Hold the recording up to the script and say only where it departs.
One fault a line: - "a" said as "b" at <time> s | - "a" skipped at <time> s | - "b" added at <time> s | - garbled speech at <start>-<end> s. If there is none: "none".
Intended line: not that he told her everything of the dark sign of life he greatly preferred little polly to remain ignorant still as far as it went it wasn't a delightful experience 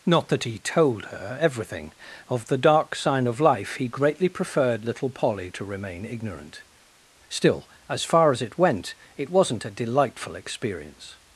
none